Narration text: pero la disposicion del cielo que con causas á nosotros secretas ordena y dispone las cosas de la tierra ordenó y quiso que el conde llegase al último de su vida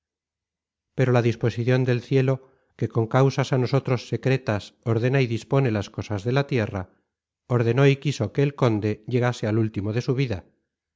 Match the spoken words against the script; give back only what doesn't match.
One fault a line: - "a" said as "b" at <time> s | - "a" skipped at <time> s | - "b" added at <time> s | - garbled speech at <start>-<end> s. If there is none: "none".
none